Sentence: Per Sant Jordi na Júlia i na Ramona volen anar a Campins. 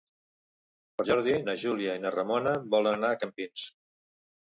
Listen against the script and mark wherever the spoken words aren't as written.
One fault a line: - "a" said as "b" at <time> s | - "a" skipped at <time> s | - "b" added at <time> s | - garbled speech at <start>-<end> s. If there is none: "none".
- "Sant" skipped at 1.1 s